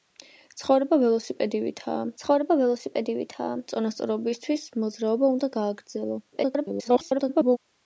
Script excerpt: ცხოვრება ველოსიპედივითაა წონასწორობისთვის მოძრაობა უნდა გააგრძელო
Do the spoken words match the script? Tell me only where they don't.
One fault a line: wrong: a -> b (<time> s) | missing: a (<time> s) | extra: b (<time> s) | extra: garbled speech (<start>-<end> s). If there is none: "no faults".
extra: ცხოვრება ველოსიპედივითაა (2.2 s)
extra: garbled speech (6.3-7.6 s)